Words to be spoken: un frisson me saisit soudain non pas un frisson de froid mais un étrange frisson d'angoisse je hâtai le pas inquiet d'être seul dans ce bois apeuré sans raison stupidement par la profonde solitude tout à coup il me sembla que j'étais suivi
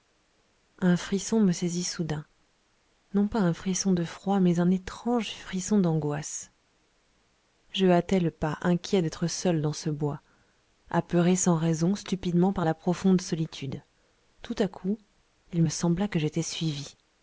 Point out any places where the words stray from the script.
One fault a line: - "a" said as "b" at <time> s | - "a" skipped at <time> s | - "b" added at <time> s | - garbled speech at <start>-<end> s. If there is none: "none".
none